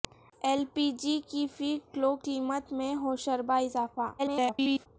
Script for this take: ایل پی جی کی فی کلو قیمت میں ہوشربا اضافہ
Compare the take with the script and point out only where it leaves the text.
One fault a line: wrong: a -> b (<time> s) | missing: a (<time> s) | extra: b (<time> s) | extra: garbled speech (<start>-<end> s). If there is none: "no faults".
extra: garbled speech (4.2-4.9 s)